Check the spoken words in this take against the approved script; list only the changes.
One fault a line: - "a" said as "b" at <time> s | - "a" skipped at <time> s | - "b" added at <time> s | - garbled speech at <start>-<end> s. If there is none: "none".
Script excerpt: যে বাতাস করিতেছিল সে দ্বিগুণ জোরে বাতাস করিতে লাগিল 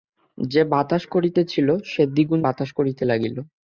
- "জোরে" skipped at 2.4 s